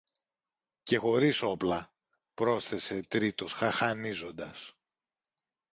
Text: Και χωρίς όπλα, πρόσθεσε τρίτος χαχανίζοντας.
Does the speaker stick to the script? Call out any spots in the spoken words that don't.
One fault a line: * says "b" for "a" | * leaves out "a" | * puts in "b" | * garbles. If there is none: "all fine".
all fine